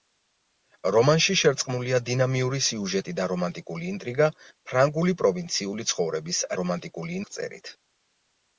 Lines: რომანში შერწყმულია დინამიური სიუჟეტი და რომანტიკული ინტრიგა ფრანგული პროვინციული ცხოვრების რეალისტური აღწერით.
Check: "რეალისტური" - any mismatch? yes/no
yes